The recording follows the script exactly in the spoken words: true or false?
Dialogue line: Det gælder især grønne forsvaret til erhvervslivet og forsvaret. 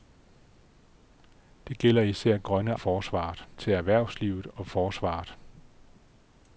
true